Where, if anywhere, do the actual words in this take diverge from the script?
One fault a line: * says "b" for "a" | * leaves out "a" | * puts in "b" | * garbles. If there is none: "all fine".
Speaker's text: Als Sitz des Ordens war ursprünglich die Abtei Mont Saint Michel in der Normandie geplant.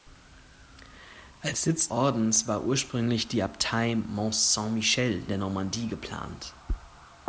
* leaves out "des"
* leaves out "in"